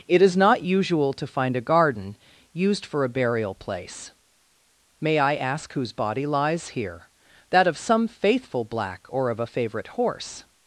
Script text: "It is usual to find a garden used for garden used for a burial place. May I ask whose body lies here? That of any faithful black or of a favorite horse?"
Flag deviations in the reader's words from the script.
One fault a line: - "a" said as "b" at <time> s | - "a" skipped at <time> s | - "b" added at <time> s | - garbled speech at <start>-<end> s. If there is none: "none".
- "not" added at 0.3 s
- "garden used for" skipped at 3.0 s
- "any" said as "some" at 7.8 s